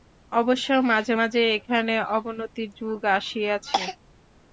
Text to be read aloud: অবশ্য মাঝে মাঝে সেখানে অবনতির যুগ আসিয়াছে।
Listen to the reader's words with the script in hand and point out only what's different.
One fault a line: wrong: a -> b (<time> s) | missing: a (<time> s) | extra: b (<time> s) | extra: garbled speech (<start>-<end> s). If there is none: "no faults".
wrong: সেখানে -> এখানে (1.6 s)